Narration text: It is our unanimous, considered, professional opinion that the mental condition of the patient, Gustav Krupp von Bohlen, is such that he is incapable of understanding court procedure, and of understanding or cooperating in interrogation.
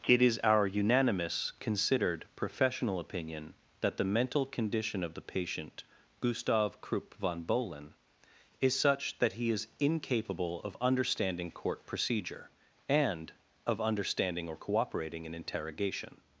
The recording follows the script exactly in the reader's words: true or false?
true